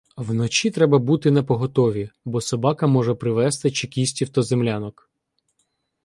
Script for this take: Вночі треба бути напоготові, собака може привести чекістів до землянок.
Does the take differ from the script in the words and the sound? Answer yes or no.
yes